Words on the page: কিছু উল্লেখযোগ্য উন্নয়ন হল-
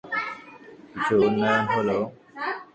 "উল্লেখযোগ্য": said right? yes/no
no